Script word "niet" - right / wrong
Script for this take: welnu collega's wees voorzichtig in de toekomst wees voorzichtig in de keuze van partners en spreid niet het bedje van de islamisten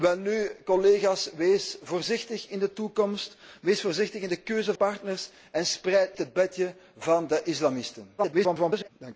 wrong